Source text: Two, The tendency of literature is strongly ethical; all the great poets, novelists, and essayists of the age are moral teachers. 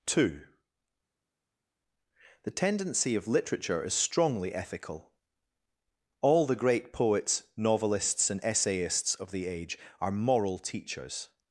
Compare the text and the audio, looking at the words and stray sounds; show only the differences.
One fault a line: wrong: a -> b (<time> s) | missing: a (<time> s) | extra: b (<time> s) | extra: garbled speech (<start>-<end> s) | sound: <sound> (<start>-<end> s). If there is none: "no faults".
no faults